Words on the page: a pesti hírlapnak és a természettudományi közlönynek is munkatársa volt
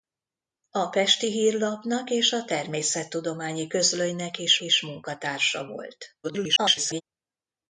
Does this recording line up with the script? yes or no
no